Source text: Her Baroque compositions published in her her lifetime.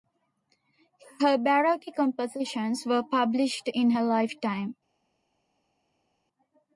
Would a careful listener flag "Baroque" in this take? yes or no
no